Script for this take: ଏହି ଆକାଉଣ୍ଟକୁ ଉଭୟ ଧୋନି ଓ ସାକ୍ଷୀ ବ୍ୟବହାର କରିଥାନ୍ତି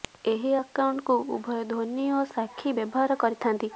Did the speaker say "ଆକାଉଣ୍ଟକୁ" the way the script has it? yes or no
yes